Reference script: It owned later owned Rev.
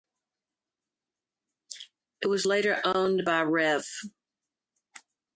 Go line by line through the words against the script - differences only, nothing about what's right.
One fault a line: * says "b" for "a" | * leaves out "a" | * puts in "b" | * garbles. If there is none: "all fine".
* says "was" for "owned"
* puts in "by"